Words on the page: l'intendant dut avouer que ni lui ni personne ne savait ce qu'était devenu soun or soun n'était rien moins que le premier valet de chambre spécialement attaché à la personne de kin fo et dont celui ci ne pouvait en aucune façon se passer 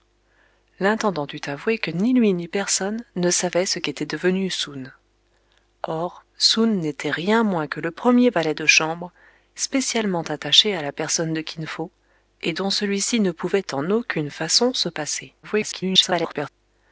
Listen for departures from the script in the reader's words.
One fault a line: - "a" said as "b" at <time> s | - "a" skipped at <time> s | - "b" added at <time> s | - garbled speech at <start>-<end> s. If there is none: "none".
- garbled speech at 15.4-16.5 s